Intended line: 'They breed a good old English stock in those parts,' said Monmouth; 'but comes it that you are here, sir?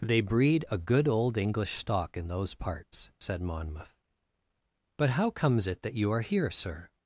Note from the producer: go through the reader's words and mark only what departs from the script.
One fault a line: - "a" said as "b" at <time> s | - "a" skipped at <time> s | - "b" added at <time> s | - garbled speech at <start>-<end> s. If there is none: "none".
- "how" added at 5.1 s